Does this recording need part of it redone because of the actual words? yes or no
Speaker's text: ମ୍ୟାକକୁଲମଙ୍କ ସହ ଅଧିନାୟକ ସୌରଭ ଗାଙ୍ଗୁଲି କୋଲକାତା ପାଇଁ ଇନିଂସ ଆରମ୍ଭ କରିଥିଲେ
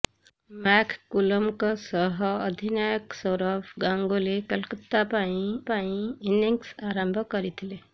yes